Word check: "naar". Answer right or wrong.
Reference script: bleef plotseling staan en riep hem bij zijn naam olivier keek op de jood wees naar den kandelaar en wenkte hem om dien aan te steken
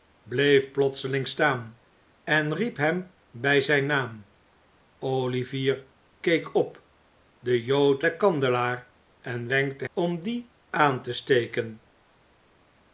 wrong